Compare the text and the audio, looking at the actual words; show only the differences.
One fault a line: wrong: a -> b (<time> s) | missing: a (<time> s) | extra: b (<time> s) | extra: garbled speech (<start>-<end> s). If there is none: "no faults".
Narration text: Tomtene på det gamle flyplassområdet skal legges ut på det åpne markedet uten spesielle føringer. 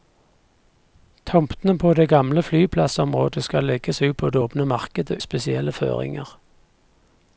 missing: uten (5.2 s)